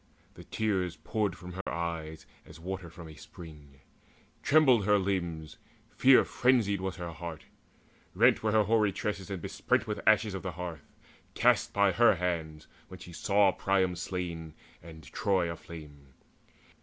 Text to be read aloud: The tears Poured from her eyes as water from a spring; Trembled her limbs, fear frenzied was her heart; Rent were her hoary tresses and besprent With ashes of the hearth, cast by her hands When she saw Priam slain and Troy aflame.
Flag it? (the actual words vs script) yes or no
no